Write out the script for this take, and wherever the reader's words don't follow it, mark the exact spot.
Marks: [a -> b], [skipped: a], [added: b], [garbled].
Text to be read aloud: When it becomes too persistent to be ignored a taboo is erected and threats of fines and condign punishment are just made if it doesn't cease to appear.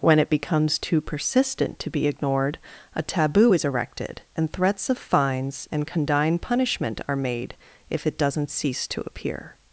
When it becomes too persistent to be ignored a taboo is erected and threats of fines and condign punishment are [skipped: just] made if it doesn't cease to appear.